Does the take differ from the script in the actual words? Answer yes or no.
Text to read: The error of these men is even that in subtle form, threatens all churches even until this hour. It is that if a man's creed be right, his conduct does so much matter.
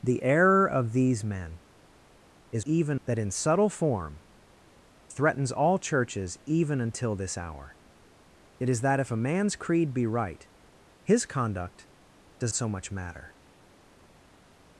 no